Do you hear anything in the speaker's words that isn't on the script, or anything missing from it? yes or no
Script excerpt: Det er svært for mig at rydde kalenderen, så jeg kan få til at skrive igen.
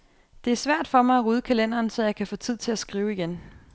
yes